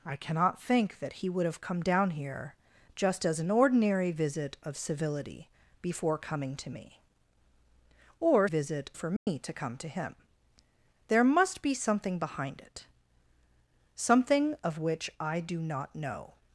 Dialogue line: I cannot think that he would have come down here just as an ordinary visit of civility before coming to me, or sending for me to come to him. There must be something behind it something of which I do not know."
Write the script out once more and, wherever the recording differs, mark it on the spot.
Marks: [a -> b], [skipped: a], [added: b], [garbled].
I cannot think that he would have come down here just as an ordinary visit of civility before coming to me, or [sending -> visit] for me to come to him. There must be something behind it something of which I do not know."